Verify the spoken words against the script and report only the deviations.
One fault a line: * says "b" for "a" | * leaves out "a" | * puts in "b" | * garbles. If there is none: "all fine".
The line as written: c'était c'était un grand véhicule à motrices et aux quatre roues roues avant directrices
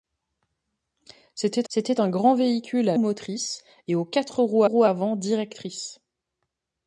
all fine